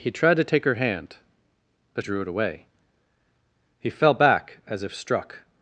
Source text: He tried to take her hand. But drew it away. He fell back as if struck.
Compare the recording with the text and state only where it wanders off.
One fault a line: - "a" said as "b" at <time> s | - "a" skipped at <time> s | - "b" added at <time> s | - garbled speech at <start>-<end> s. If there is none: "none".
none